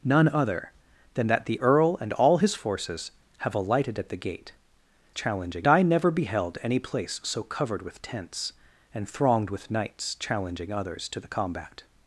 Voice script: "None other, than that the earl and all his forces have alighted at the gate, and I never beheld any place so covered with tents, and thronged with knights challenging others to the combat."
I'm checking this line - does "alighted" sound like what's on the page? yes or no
yes